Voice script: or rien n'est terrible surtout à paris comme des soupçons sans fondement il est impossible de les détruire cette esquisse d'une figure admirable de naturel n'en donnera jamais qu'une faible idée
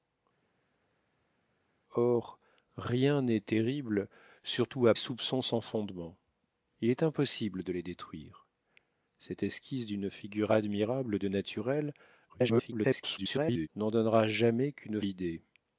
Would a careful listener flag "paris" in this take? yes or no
yes